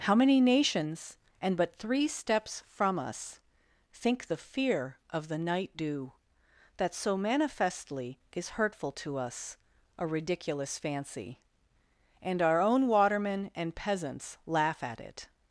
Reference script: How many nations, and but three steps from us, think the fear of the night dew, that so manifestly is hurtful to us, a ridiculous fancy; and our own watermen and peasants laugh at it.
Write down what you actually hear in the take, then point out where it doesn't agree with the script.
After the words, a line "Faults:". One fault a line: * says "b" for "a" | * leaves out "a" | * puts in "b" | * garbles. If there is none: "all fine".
How many nations, and but three steps from us, think the fear of the night dew, that so manifestly is hurtful to us, a ridiculous fancy; and our own watermen and peasants laugh at it.
Faults:
all fine